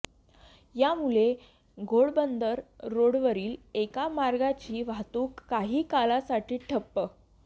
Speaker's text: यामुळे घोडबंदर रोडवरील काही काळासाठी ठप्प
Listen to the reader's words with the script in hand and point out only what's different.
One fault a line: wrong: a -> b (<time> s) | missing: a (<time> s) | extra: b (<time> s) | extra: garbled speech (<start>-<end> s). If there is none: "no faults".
extra: एका मार्गाची वाहतूक (3.7 s)